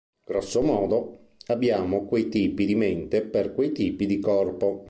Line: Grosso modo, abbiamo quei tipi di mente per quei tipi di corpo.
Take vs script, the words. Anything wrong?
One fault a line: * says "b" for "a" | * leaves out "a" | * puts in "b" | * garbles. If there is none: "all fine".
all fine